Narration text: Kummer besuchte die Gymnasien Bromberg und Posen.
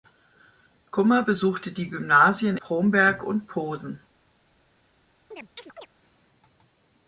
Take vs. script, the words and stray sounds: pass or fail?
fail